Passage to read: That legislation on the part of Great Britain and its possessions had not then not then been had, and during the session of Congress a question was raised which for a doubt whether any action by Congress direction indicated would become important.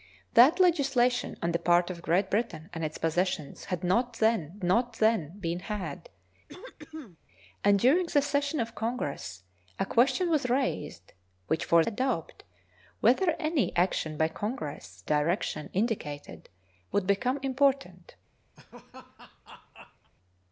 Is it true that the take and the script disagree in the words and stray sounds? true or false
true